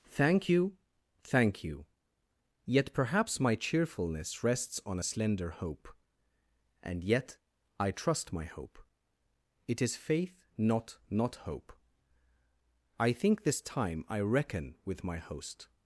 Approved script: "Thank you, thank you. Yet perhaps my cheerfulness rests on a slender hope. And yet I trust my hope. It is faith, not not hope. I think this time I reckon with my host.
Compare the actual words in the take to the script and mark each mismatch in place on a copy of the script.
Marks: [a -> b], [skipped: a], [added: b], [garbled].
"Thank you, thank you. Yet perhaps my cheerfulness rests on a slender hope. And yet I trust my hope. It is faith, not not hope. I think this time I reckon with my host.